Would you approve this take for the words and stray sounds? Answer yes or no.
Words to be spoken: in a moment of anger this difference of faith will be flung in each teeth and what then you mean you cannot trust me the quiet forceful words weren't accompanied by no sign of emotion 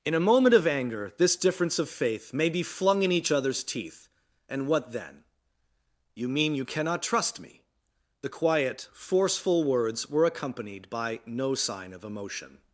no